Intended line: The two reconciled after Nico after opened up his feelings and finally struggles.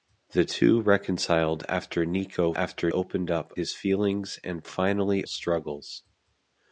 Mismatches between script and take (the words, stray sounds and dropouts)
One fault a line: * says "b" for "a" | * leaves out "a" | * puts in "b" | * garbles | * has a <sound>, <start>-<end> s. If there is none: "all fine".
all fine